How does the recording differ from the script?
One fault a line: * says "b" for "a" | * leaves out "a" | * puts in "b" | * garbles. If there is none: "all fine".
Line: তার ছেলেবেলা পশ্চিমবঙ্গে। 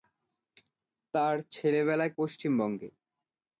all fine